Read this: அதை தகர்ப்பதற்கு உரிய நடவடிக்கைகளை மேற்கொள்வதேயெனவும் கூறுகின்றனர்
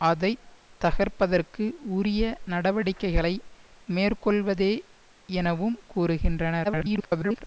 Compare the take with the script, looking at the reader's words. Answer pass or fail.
fail